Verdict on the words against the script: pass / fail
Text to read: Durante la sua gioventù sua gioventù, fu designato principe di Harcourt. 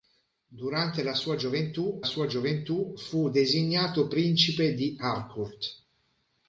pass